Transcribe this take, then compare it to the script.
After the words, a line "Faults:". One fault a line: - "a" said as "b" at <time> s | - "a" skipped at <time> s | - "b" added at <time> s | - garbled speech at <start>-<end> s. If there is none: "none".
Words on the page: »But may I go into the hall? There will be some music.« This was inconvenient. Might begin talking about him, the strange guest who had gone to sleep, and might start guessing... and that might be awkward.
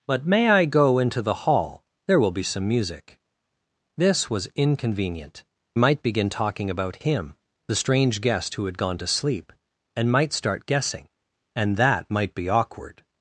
»But may I go into the hall? There will be some music.« This was inconvenient. Might begin talking about him, the strange guest who had gone to sleep, and might start guessing... and that might be awkward.
Faults:
none